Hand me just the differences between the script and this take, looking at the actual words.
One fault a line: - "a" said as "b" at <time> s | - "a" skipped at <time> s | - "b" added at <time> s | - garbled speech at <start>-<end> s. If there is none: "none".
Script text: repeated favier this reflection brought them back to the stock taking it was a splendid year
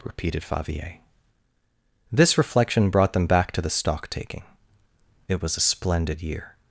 none